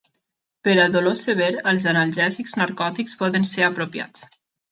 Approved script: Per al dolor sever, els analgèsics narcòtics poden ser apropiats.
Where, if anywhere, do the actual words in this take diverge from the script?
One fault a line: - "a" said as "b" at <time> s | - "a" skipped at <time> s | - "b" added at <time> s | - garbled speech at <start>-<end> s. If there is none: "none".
none